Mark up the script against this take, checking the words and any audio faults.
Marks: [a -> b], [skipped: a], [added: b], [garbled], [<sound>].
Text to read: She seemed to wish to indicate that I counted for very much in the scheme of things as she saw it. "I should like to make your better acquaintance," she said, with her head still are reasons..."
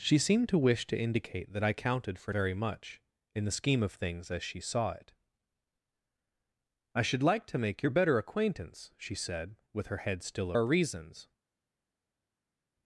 She seemed to wish to indicate that I counted for very much in the scheme of things as she saw it. "I should like to make your better acquaintance," she said, with her head still are reasons..."